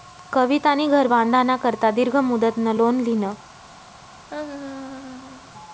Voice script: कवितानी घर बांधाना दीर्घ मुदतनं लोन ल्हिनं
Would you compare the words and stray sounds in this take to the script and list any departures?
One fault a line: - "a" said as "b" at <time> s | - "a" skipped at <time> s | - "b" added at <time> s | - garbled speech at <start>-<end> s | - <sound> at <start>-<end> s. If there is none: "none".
- "करता" added at 1.6 s
- laugh at 4.3-5.5 s